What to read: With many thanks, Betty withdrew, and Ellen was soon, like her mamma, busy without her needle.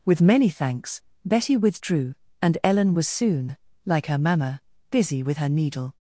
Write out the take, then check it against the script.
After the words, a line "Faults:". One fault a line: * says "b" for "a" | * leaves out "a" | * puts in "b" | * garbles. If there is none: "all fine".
With many thanks, Betty withdrew, and Ellen was soon, like her mamma, busy with her needle.
Faults:
* says "with" for "without"